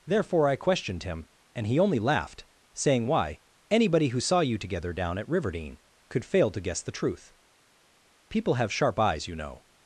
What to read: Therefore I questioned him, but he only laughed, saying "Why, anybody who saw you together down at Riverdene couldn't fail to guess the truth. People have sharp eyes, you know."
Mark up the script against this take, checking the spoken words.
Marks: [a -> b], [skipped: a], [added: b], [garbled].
Therefore I questioned him, [but -> and] he only laughed, saying "Why, anybody who saw you together down at Riverdene [couldn't -> could] fail to guess the truth. People have sharp eyes, you know."